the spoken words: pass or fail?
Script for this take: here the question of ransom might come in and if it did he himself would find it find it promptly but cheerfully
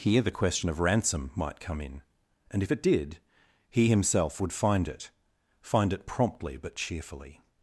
pass